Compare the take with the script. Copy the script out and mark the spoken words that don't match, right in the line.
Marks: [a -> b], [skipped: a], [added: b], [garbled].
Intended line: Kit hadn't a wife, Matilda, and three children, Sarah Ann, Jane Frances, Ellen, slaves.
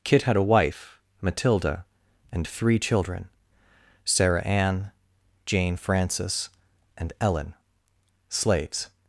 Kit [hadn't -> had] a wife, Matilda, and three children, Sarah Ann, Jane Frances, [added: and] Ellen, slaves.